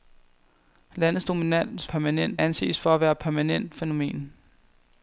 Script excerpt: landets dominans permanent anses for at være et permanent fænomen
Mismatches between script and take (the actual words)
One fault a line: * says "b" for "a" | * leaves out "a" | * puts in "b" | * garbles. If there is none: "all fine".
all fine